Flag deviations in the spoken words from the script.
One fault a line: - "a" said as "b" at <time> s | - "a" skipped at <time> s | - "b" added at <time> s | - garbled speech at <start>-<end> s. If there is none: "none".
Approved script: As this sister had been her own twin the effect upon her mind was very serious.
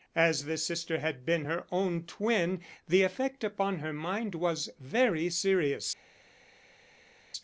none